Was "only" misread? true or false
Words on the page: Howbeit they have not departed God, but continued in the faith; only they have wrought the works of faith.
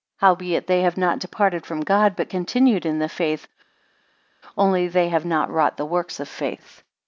false